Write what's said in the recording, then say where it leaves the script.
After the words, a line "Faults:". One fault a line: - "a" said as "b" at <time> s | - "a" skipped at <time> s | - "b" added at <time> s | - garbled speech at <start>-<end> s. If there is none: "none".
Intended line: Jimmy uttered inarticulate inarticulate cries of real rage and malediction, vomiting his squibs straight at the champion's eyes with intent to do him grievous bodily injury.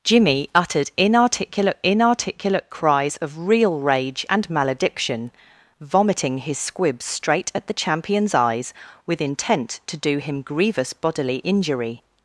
Jimmy uttered inarticulate inarticulate cries of real rage and malediction, vomiting his squibs straight at the champion's eyes with intent to do him grievous bodily injury.
Faults:
none